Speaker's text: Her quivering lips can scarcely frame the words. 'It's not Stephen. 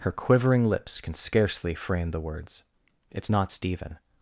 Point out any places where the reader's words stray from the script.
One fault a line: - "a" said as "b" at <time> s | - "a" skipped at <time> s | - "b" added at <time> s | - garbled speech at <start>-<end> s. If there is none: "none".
none